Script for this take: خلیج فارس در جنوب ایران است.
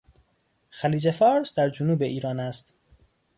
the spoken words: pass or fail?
pass